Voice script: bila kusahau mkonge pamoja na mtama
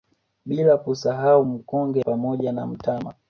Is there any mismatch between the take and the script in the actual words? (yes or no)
no